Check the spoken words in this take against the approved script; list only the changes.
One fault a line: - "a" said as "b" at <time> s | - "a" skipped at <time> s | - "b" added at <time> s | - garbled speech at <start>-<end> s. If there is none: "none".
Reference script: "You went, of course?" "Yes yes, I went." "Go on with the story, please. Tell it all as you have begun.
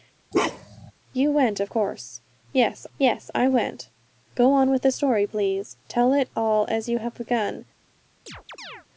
none